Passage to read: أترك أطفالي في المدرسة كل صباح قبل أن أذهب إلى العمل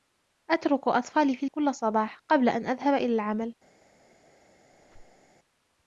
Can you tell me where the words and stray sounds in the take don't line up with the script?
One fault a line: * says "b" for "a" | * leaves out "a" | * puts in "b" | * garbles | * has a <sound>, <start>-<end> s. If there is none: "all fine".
* leaves out "المدرسة"
* has a squeak, 4.7-5.3 s